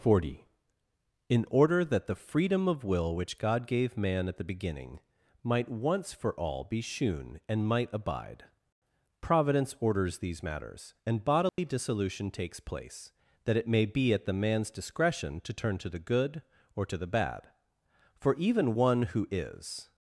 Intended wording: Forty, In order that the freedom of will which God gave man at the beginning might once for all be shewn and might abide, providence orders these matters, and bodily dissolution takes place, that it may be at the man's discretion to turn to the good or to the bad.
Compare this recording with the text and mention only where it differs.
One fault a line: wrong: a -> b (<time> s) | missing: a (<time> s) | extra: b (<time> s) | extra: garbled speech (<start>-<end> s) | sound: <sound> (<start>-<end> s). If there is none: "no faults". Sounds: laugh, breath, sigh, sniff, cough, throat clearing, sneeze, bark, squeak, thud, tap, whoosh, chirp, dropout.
sound: dropout (11.5-11.6 s)
extra: For even one who is (18.1 s)